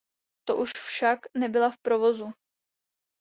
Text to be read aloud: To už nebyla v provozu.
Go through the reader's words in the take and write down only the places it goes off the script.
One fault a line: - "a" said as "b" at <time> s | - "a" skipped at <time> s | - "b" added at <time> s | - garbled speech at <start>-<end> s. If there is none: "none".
- "však" added at 0.7 s